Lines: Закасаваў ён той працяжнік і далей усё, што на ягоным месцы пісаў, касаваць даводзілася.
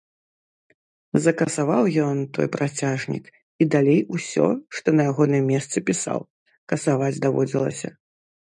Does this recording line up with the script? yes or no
yes